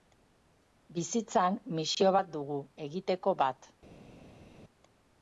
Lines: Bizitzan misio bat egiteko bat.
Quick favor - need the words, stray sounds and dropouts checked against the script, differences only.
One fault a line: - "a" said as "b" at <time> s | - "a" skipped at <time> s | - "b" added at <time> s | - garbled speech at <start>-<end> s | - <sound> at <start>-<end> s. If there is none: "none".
- "dugu" added at 2.4 s